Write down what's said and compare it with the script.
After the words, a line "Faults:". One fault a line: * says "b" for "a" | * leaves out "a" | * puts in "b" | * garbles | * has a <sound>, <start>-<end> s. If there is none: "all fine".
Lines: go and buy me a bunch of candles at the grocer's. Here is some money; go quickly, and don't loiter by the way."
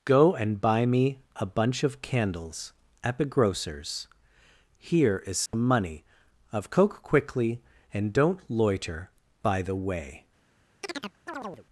go and buy me a bunch of candles at the grocer's. Here is some money; of coke quickly, and don't loiter by the way."
Faults:
* has a dropout, 5.5-5.5 s
* says "of coke" for "go"
* has a chirp, 10.8-11.7 s